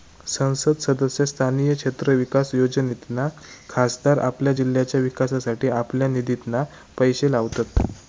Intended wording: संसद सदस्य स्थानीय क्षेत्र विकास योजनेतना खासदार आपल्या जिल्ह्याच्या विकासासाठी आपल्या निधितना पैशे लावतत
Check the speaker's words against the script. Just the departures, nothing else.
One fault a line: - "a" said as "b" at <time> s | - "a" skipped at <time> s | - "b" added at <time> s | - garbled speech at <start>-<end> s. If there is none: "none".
none